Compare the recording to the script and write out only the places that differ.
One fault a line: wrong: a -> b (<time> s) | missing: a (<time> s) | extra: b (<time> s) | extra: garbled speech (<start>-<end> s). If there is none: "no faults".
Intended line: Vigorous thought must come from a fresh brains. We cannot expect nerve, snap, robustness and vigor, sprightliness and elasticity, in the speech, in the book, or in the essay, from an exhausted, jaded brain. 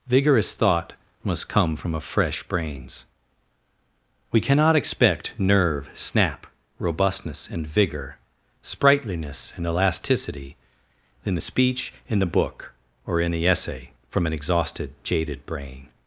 no faults